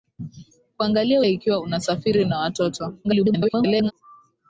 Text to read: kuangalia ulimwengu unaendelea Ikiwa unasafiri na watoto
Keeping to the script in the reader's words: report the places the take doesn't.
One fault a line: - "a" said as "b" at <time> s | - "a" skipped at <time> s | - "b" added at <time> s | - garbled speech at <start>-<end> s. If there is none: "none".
- "ulimwengu unaendelea" skipped at 1.2 s
- garbled speech at 3.0-3.9 s